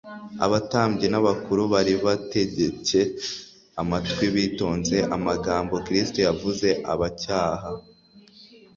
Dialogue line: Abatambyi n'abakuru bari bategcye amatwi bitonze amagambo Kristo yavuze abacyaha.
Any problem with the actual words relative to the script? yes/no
no